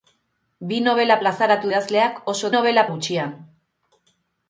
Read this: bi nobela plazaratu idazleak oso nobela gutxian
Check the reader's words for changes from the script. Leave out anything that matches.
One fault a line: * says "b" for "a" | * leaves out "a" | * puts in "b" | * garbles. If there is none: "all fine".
all fine